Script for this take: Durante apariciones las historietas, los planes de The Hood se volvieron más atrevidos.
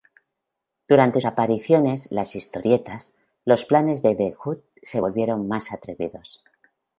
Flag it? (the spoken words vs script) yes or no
no